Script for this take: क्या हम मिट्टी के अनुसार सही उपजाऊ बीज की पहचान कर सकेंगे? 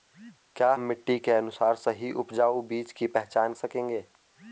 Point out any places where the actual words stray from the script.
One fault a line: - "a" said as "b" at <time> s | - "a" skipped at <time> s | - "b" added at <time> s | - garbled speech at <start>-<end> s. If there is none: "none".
- "हम" skipped at 0.7 s
- "कर" skipped at 3.5 s